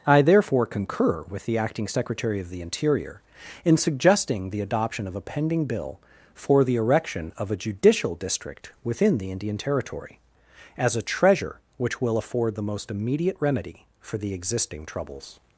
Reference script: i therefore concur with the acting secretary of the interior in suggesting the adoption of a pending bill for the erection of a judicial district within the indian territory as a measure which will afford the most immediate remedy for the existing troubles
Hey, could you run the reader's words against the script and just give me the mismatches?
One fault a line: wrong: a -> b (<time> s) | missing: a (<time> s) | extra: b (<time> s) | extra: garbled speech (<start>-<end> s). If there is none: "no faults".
wrong: measure -> treasure (11.0 s)